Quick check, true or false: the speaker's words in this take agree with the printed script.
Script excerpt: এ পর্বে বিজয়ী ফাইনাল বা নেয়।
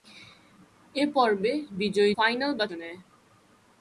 true